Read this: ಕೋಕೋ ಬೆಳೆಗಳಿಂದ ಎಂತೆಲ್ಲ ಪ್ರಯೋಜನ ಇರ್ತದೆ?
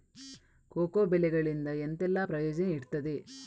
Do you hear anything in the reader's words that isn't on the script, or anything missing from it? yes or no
no